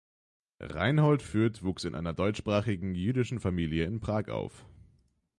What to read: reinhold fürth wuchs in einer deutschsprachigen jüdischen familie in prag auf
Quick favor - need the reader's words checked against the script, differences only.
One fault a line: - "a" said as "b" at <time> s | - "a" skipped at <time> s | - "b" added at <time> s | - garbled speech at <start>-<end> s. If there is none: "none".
none